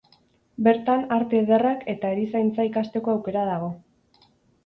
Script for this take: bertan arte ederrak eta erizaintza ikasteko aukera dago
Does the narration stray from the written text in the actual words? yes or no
no